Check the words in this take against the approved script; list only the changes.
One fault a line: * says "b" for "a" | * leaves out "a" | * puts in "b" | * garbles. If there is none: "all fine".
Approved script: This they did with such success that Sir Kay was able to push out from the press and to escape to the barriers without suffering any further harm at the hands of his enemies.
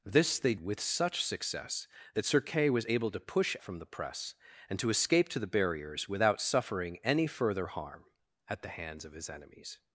* leaves out "did"
* leaves out "out"